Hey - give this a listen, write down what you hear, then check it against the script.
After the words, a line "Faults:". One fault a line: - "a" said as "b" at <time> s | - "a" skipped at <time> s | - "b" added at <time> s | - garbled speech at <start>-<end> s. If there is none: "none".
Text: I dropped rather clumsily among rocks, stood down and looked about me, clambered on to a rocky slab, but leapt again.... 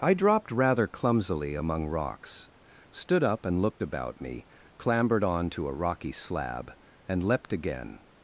I dropped rather clumsily among rocks, stood up and looked about me, clambered on to a rocky slab, and leapt again....
Faults:
- "down" said as "up" at 3.2 s
- "but" said as "and" at 7.1 s